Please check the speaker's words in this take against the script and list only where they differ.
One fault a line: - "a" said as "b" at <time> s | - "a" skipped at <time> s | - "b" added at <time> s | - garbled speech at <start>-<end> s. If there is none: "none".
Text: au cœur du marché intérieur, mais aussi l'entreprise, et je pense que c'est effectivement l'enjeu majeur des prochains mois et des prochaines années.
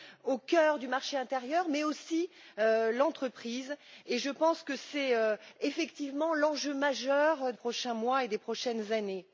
- "des" skipped at 7.5 s